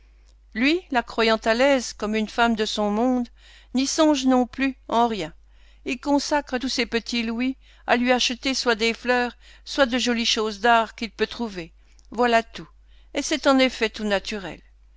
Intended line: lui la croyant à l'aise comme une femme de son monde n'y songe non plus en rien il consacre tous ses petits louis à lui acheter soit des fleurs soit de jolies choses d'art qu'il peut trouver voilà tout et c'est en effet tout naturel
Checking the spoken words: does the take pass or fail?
pass